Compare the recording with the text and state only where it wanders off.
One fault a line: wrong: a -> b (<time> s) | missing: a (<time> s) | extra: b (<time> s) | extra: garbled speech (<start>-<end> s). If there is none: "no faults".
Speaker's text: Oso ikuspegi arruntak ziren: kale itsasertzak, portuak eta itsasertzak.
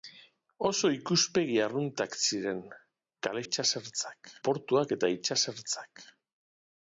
no faults